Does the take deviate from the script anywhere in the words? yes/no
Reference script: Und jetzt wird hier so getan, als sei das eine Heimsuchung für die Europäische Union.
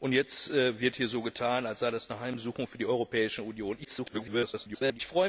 yes